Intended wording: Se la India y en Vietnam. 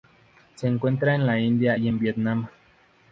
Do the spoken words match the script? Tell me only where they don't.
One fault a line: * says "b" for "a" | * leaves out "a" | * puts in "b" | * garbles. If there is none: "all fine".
* puts in "encuentra en"